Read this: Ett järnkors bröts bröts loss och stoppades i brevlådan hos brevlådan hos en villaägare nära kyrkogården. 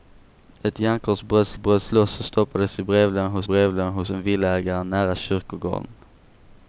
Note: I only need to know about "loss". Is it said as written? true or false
true